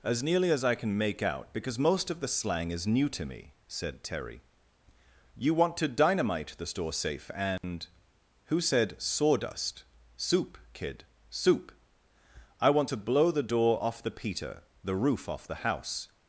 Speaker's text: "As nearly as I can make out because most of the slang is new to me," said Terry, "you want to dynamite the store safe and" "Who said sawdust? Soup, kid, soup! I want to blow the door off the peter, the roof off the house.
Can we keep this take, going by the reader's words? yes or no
yes